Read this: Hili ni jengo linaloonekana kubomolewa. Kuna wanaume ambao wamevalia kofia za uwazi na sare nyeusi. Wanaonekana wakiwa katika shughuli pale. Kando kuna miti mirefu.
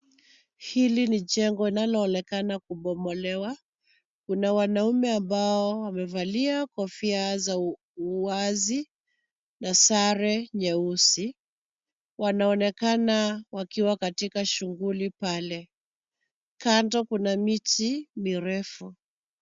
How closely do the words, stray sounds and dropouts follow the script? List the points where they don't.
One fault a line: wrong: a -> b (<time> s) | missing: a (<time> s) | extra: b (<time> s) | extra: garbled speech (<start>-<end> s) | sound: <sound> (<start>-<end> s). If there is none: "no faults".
no faults